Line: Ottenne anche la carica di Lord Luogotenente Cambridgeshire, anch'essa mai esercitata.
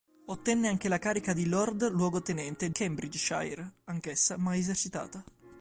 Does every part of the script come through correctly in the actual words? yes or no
yes